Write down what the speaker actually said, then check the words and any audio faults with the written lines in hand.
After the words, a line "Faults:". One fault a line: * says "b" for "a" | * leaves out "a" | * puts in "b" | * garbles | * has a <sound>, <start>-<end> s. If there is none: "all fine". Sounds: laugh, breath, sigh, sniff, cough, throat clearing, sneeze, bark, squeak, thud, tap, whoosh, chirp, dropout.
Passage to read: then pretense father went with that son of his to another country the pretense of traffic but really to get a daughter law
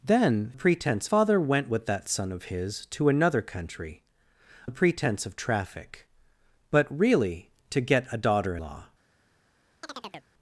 then pretense father went with that son of his to another country the pretense of traffic but really to get a daughter law
Faults:
* has a chirp, 9.8-10.3 s